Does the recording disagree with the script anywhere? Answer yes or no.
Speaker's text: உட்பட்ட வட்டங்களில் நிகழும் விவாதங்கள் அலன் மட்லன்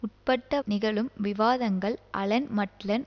yes